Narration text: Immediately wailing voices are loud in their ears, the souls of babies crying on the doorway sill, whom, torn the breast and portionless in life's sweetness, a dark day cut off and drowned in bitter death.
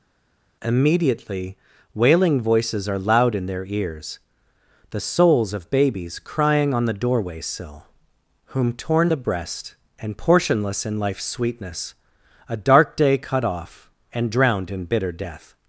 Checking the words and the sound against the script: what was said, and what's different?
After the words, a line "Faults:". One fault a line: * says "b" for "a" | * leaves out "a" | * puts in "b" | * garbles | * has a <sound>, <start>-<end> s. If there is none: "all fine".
Immediately wailing voices are loud in their ears, the souls of babies crying on the doorway sill, whom, torn the breast and portionless in life's sweetness, a dark day cut off and drowned in bitter death.
Faults:
all fine